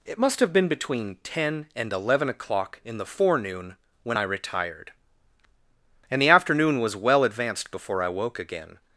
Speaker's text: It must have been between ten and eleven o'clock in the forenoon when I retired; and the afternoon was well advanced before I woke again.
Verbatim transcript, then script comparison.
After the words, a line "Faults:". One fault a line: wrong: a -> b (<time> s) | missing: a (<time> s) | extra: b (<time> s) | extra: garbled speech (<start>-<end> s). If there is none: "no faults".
It must have been between ten and eleven o'clock in the forenoon when I retired; and the afternoon was well advanced before I woke again.
Faults:
no faults